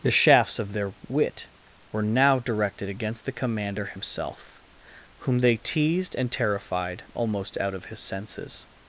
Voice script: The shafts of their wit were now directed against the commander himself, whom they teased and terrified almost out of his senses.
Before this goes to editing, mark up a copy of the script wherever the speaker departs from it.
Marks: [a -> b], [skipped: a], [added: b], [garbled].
The shafts of their wit were now directed against the commander himself, whom they teased and terrified almost out of his senses.